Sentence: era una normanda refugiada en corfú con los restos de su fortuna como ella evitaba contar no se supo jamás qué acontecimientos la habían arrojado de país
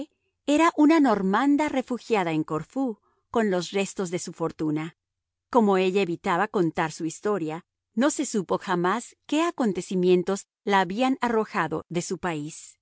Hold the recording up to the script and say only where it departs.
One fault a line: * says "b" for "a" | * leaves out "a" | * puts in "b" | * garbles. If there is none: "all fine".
* puts in "su historia"
* puts in "su"